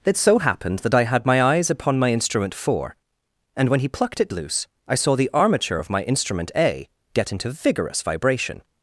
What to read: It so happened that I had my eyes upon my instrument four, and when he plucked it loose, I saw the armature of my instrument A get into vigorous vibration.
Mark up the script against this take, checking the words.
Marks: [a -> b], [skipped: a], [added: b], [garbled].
It so happened that I had my eyes upon my instrument four, and when he plucked it loose, I saw the armature of my instrument A get into vigorous vibration.